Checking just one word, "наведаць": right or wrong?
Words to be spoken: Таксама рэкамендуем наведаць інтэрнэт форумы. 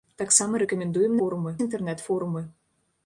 wrong